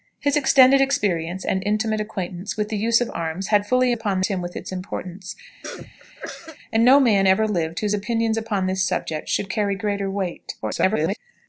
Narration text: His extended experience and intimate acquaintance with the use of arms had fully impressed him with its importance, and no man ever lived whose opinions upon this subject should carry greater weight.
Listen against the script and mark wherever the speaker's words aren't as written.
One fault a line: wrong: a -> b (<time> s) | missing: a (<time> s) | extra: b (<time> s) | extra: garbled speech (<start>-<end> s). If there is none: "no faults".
wrong: impressed -> upon (3.9 s)
extra: garbled speech (10.6-11.2 s)